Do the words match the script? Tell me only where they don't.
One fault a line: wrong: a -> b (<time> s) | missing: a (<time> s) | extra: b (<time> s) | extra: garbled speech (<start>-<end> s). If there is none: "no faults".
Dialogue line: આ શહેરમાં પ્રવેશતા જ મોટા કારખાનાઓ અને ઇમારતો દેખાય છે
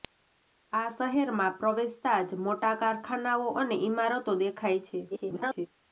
extra: garbled speech (5.1-5.7 s)